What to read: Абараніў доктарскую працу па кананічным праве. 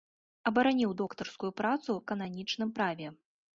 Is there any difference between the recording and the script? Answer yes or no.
yes